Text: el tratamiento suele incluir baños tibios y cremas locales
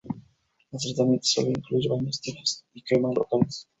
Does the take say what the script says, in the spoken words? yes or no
yes